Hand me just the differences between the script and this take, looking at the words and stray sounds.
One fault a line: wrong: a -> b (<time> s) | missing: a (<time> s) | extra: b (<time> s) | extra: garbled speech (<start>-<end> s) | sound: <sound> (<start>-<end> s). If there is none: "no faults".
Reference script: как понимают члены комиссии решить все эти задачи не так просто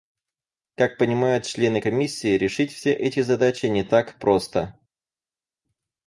no faults